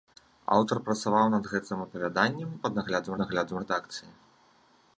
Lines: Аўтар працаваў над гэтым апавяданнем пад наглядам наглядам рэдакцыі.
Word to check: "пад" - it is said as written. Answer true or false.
true